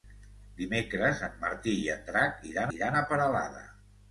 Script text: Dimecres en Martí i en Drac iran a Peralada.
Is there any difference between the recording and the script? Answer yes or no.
yes